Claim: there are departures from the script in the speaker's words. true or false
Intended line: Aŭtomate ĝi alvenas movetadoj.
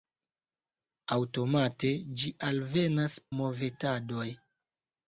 false